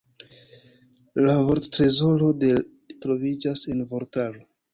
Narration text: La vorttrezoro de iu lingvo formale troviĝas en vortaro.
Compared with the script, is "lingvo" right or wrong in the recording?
wrong